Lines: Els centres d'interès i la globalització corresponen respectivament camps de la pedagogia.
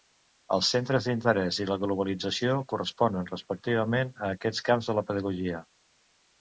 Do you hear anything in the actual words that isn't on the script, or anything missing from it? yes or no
yes